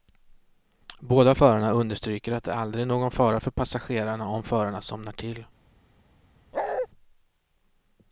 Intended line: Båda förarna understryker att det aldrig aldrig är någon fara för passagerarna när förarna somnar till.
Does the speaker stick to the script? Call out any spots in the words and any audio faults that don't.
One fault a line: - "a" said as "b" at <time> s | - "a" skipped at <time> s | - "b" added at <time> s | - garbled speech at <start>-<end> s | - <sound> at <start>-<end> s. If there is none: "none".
- "aldrig" skipped at 2.8 s
- "när" said as "om" at 4.3 s
- bark at 6.5-6.9 s